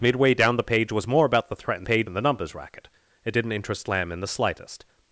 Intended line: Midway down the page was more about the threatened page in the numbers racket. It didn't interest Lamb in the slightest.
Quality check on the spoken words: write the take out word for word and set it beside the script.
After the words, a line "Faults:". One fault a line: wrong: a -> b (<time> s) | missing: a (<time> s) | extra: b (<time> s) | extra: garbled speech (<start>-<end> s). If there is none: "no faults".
Midway down the page was more about the threatened page in the numbers racket. It didn't interest Lamb in the slightest.
Faults:
no faults